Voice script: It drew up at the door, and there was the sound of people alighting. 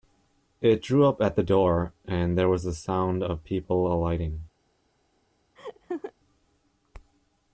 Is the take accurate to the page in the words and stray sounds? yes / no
no